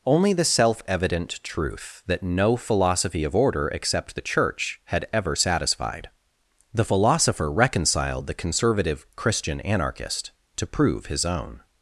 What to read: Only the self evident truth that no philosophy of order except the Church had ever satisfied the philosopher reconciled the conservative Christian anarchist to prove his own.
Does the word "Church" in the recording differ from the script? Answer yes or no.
no